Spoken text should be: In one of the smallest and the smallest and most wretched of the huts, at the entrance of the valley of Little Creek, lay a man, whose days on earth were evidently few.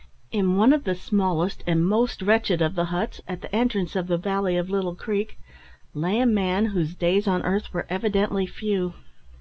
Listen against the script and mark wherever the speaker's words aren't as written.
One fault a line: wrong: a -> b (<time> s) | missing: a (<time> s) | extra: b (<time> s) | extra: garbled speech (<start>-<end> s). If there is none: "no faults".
missing: the smallest and (1.9 s)